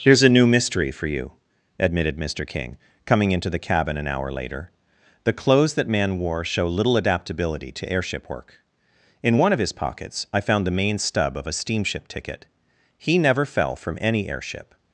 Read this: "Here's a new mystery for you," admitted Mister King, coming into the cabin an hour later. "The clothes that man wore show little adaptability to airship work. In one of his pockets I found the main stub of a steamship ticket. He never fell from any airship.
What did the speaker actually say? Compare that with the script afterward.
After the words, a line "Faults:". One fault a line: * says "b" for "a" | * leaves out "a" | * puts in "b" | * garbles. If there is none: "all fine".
"Here's a new mystery for you," admitted Mister King, coming into the cabin an hour later. "The clothes that man wore show little adaptability to airship work. In one of his pockets I found the main stub of a steamship ticket. He never fell from any airship.
Faults:
all fine